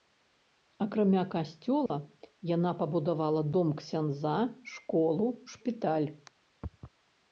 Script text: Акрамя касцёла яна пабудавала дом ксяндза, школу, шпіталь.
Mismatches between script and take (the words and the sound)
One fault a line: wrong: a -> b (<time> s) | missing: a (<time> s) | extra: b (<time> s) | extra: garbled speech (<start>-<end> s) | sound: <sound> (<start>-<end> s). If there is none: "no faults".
sound: dropout (1.9-1.9 s)